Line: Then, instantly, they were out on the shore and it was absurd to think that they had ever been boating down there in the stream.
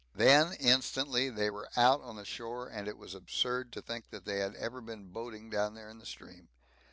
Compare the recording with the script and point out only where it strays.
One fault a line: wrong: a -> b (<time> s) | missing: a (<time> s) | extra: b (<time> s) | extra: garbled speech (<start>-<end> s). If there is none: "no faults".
no faults